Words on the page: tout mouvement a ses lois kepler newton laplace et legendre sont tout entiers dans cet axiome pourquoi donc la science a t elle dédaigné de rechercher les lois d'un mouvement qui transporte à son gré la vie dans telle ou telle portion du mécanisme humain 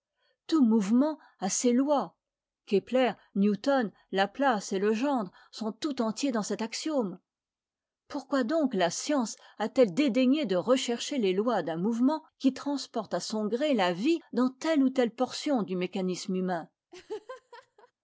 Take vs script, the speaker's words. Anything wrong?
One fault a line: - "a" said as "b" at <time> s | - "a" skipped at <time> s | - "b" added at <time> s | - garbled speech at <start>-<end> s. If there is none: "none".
none